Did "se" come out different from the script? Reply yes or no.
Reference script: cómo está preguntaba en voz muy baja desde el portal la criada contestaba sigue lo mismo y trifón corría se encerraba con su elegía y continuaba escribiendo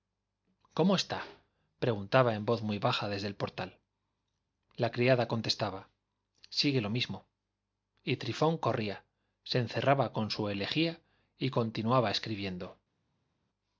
no